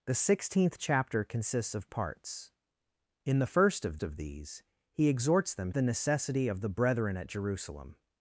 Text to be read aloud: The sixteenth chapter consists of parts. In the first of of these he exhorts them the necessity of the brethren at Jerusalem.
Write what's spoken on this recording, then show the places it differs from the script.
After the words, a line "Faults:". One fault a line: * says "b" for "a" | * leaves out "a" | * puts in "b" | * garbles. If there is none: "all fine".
The sixteenth chapter consists of parts. In the first of of these he exhorts them the necessity of the brethren at Jerusalem.
Faults:
all fine